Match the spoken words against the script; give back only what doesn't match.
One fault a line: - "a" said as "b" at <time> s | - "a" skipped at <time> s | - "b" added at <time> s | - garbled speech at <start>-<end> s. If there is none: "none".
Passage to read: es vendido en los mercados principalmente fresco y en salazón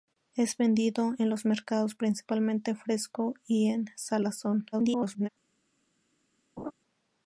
- garbled speech at 4.7-5.3 s